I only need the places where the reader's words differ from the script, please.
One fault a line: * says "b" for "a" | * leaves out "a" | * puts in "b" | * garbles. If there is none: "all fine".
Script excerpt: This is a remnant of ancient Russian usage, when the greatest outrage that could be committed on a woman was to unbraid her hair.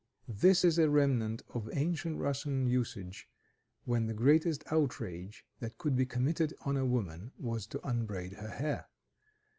all fine